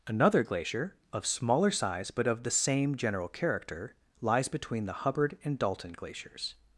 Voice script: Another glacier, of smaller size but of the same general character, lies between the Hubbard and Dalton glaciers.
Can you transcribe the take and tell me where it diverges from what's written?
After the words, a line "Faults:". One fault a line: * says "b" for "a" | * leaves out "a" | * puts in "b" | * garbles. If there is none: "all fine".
Another glacier, of smaller size but of the same general character, lies between the Hubbard and Dalton glaciers.
Faults:
all fine